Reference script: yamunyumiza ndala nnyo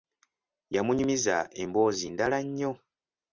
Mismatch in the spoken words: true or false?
true